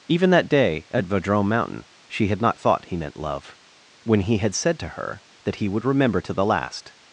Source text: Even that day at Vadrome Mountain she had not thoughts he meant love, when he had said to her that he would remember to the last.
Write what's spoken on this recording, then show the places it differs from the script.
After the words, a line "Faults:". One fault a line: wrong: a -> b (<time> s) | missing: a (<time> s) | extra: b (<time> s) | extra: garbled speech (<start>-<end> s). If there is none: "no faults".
Even that day at Vadrome Mountain she had not thought he meant love, when he had said to her that he would remember to the last.
Faults:
wrong: thoughts -> thought (2.6 s)